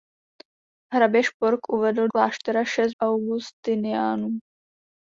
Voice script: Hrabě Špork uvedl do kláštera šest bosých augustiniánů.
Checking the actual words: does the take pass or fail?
fail